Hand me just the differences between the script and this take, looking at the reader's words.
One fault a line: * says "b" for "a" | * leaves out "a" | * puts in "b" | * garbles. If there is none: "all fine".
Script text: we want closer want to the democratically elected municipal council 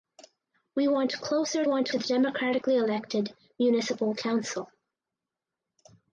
all fine